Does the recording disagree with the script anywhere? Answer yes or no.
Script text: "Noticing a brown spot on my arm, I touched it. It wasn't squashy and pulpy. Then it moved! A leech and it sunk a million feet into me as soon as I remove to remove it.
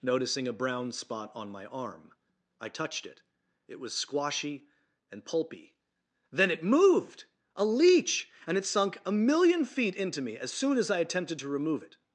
yes